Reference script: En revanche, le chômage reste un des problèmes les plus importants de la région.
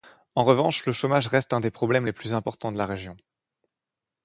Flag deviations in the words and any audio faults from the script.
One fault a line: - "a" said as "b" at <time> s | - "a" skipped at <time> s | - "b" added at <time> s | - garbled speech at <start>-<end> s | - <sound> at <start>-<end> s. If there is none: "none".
none